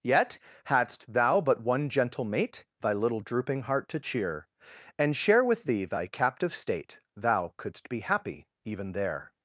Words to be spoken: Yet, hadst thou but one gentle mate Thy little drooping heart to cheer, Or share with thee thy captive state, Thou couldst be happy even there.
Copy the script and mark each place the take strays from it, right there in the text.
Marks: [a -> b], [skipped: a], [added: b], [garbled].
Yet, hadst thou but one gentle mate Thy little drooping heart to cheer, [Or -> And] share with thee thy captive state, Thou couldst be happy even there.